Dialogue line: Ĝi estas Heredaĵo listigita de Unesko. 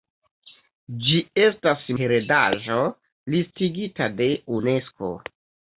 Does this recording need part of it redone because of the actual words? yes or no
no